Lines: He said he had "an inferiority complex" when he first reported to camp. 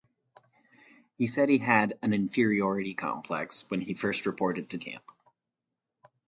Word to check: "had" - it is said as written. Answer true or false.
true